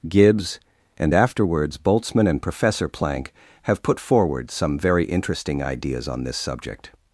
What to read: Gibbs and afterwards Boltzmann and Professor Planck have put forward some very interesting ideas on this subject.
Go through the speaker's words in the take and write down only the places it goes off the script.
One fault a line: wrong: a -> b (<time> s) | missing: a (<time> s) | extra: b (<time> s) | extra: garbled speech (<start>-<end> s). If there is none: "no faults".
no faults